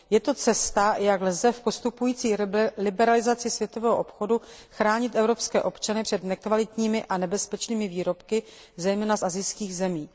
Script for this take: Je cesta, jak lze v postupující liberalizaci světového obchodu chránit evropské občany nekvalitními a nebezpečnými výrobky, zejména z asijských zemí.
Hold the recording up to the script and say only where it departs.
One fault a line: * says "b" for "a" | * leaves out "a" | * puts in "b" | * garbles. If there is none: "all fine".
* puts in "to"
* puts in "před"